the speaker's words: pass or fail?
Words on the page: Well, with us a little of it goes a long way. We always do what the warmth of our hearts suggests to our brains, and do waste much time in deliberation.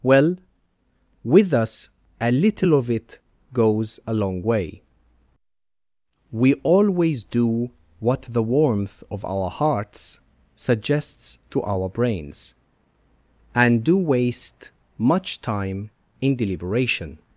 pass